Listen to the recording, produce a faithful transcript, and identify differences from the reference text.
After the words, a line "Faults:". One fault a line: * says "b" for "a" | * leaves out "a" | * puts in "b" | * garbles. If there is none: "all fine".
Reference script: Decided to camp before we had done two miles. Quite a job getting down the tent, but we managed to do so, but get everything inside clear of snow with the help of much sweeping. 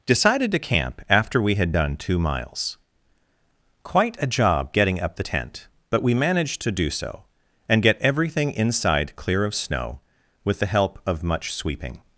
Decided to camp after we had done two miles. Quite a job getting up the tent, but we managed to do so, and get everything inside clear of snow with the help of much sweeping.
Faults:
* says "after" for "before"
* says "up" for "down"
* says "and" for "but"